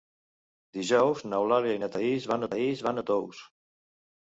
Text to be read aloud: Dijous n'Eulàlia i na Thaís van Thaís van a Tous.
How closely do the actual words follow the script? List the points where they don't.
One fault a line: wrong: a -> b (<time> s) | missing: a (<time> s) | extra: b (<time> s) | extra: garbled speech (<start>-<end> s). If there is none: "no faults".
no faults